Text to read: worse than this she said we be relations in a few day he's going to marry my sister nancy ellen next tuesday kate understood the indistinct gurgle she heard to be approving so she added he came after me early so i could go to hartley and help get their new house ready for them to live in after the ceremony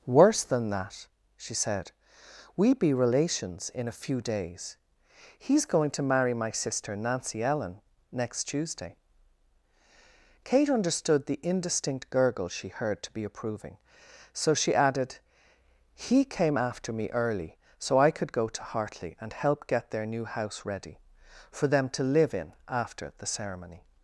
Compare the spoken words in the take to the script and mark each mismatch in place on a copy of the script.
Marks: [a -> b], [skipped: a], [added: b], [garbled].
worse than [this -> that] she said we be relations in a few [day -> days] he's going to marry my sister nancy ellen next tuesday kate understood the indistinct gurgle she heard to be approving so she added he came after me early so i could go to hartley and help get their new house ready for them to live in after the ceremony